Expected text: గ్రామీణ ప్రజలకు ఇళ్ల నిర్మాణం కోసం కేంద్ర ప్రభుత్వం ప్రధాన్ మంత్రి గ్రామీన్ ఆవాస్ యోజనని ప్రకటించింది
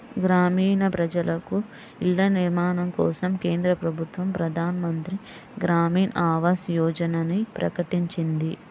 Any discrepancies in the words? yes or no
no